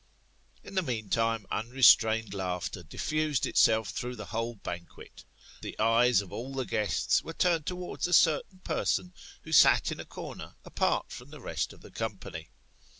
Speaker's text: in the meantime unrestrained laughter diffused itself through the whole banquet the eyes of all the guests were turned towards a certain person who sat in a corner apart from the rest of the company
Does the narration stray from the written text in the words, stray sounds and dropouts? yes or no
no